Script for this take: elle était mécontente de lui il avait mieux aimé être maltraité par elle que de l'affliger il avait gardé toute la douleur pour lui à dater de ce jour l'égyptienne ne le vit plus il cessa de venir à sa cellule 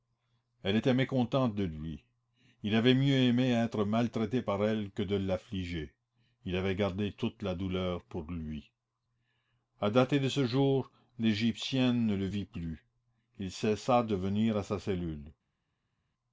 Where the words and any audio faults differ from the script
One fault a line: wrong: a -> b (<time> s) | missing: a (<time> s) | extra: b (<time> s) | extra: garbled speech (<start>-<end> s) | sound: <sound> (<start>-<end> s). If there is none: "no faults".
no faults